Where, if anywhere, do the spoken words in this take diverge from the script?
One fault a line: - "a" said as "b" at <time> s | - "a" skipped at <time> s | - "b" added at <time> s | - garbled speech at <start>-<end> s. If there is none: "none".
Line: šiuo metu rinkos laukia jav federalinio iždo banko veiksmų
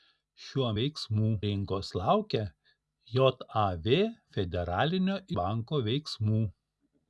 - "metu" said as "veiksmų" at 0.8 s
- "iždo" skipped at 5.2 s